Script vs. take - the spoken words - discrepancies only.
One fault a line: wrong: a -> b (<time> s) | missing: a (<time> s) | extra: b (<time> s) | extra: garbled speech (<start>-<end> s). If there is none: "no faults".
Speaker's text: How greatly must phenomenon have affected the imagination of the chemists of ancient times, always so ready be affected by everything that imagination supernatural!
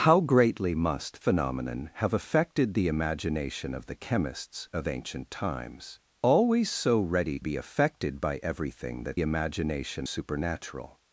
no faults